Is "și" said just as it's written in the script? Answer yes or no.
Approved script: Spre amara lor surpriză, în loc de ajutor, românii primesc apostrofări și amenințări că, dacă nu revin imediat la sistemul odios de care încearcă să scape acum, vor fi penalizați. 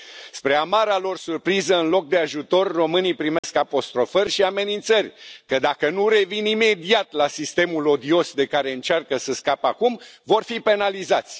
yes